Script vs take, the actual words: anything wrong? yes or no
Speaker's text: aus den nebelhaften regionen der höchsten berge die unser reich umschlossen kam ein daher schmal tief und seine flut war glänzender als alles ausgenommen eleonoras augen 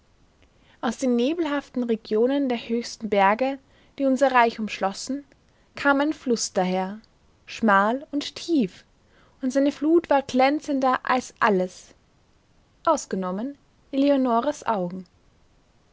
yes